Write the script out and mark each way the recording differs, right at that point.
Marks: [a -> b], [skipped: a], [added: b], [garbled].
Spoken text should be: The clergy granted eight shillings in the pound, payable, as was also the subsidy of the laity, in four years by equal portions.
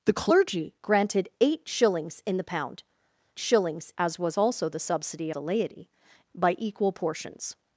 The clergy granted eight shillings in the pound, [payable, -> shillings] as was also the subsidy [skipped: of] the laity, [skipped: in four years] by equal portions.